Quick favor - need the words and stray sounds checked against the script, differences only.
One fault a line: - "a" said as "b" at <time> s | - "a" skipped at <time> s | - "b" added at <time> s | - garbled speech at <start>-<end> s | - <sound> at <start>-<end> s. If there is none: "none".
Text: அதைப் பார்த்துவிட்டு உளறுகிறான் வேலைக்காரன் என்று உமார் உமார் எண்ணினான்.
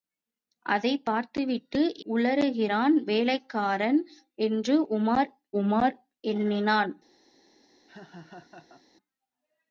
- laugh at 7.9-8.8 s